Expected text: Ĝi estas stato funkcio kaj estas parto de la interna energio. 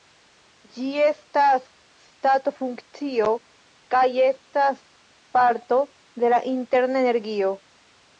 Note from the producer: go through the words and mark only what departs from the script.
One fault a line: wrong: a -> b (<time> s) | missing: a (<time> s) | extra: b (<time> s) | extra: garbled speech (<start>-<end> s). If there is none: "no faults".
no faults